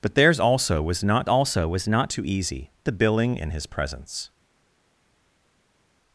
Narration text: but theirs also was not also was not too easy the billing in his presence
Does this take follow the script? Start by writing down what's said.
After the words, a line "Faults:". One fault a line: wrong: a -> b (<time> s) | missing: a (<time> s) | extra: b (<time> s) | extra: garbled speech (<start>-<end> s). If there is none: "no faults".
but theirs also was not also was not too easy the billing in his presence
Faults:
no faults